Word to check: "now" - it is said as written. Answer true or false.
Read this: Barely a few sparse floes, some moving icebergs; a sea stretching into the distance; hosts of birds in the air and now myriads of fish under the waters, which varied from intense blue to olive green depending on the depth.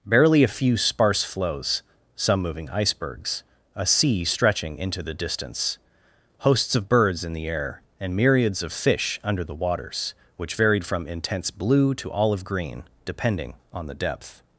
false